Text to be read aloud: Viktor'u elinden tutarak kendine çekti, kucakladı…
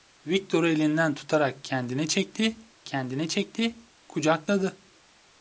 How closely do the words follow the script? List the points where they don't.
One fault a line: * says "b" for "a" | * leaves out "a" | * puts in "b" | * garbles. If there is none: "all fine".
* puts in "kendine çekti"